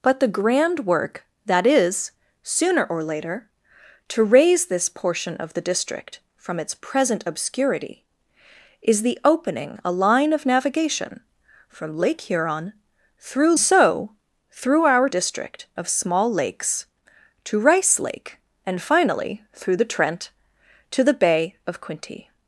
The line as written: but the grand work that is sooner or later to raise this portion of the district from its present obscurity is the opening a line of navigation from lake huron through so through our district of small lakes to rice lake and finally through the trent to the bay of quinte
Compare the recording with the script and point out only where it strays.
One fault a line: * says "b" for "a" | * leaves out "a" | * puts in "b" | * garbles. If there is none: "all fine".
all fine